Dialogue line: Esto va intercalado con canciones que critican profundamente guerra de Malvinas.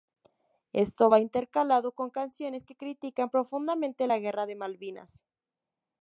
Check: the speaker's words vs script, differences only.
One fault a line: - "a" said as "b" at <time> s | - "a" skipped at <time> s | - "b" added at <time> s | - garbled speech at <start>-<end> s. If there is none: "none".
- "la" added at 4.0 s